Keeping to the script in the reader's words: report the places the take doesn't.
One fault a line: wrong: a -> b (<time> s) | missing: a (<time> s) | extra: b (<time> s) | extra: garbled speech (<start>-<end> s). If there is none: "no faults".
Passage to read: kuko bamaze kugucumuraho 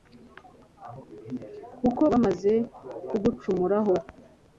no faults